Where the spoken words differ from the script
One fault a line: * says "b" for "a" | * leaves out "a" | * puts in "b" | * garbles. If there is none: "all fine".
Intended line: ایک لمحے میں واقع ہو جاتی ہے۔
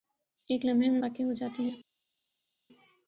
all fine